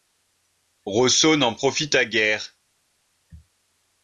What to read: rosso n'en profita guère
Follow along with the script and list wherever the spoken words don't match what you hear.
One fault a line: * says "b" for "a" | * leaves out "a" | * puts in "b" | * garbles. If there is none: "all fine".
all fine